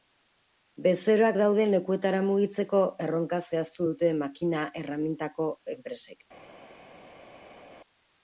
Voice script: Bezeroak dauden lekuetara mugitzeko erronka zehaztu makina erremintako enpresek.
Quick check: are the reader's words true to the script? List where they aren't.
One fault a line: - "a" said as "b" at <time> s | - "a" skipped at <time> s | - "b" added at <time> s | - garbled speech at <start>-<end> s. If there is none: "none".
- "dute" added at 3.9 s